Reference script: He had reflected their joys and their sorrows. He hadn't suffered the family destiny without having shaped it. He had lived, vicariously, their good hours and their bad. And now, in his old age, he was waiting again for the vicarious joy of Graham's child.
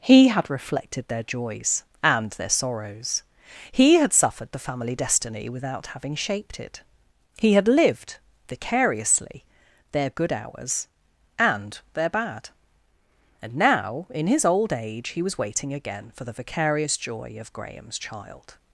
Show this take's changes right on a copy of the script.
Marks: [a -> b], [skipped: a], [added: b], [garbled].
He had reflected their joys and their sorrows. He [hadn't -> had] suffered the family destiny without having shaped it. He had lived, vicariously, their good hours and their bad. And now, in his old age, he was waiting again for the vicarious joy of Graham's child.